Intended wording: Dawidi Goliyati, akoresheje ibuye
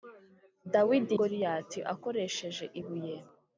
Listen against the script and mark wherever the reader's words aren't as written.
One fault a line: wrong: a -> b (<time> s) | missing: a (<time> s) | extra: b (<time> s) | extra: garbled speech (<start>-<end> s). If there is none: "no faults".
no faults